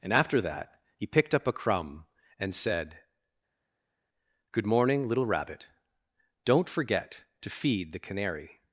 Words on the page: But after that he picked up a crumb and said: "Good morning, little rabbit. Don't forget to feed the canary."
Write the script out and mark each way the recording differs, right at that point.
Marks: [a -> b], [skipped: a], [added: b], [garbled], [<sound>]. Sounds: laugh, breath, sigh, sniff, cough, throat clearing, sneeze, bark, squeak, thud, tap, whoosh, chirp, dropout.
[But -> And] after that he picked up a crumb and said: "Good morning, little rabbit. Don't forget to feed the canary."